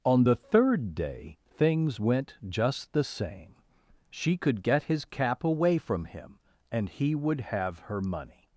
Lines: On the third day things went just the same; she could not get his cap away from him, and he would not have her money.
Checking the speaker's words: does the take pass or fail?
fail